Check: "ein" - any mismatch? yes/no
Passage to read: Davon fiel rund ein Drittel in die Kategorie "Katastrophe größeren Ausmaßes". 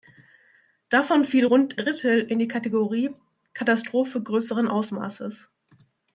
yes